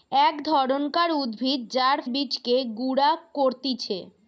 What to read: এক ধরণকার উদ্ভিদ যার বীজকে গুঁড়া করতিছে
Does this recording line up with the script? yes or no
yes